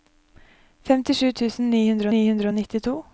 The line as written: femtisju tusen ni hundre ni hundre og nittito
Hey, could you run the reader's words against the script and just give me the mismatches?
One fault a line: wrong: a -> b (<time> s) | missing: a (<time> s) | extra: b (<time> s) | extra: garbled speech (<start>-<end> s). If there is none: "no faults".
no faults